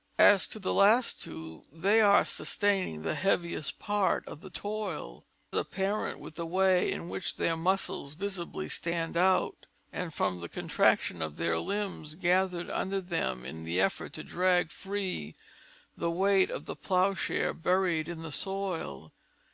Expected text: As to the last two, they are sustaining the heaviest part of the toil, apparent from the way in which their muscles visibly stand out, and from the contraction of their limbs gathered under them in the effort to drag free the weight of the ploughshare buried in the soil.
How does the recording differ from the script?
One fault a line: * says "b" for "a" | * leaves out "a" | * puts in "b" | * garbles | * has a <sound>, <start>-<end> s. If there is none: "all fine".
all fine